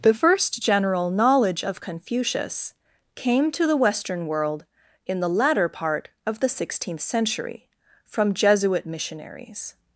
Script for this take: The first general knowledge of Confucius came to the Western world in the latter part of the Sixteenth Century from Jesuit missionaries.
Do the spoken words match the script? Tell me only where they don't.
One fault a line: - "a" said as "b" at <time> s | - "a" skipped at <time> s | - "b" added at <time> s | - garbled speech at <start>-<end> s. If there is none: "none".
none